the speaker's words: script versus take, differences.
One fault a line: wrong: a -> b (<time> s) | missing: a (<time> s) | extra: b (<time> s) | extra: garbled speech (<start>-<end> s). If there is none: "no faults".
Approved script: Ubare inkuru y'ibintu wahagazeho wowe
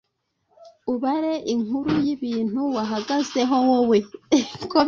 no faults